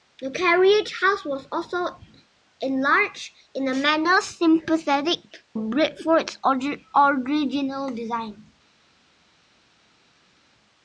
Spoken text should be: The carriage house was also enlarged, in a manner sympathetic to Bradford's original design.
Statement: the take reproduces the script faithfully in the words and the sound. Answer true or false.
false